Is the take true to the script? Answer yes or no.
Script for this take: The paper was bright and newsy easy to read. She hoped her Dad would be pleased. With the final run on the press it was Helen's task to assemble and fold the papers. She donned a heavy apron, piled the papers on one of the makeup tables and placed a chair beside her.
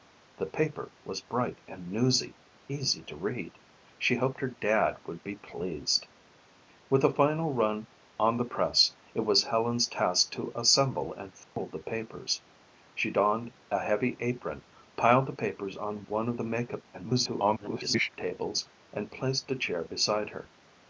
no